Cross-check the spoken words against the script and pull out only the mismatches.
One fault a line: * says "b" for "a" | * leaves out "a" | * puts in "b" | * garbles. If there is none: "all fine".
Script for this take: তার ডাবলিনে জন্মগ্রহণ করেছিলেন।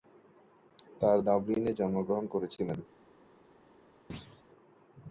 all fine